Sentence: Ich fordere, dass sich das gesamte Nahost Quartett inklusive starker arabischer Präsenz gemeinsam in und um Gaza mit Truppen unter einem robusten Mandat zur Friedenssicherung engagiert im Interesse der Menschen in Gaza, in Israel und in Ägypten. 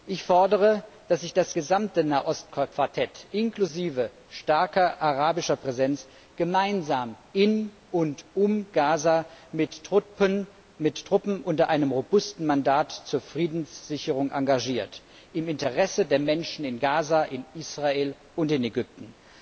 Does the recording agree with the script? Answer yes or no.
yes